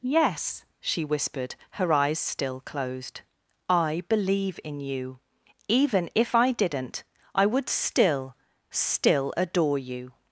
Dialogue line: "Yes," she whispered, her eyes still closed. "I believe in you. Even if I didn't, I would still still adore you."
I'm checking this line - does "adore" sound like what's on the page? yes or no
yes